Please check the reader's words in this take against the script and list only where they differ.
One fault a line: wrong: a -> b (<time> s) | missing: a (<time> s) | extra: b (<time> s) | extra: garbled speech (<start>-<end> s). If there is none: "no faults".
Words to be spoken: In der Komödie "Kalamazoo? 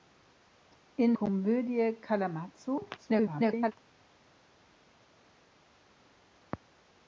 missing: der (1.1 s)
extra: garbled speech (3.0-3.7 s)